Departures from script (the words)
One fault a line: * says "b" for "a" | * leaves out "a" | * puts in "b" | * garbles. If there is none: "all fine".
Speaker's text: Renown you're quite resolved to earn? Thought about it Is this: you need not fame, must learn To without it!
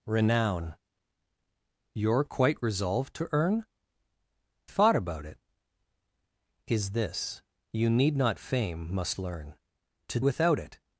all fine